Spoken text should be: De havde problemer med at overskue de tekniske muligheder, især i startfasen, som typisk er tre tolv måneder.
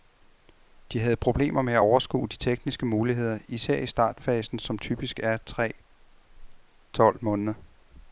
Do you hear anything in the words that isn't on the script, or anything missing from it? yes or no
no